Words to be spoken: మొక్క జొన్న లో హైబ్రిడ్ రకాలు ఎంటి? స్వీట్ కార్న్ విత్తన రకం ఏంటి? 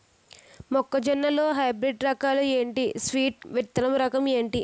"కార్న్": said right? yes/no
no